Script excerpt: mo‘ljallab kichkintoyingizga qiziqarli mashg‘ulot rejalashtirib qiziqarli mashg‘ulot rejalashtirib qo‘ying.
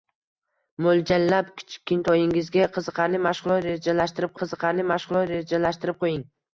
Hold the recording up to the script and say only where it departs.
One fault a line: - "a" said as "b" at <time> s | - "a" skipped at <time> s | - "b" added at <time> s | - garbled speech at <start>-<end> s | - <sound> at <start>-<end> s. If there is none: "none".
none